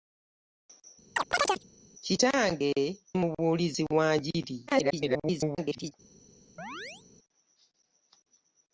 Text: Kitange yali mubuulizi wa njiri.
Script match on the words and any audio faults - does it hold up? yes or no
no